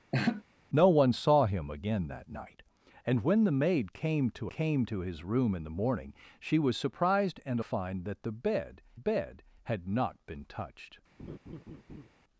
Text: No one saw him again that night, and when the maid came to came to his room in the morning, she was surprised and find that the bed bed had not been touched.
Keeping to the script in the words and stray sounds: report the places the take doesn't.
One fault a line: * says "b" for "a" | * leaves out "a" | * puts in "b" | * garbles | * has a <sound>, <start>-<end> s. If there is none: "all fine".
* has a laugh, 0.1-0.4 s
* has a laugh, 11.2-12.1 s